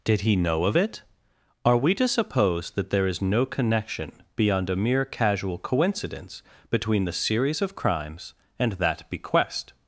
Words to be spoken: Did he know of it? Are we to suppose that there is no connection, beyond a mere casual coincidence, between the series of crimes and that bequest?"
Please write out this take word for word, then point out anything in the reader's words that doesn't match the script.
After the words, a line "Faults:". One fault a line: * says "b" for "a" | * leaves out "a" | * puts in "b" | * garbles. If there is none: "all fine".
Did he know of it? Are we to suppose that there is no connection, beyond a mere casual coincidence, between the series of crimes and that bequest?"
Faults:
all fine